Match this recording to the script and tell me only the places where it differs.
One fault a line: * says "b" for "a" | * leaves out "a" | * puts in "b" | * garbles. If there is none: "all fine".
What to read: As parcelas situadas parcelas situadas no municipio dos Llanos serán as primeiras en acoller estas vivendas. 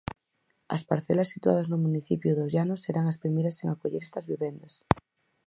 * leaves out "parcelas situadas"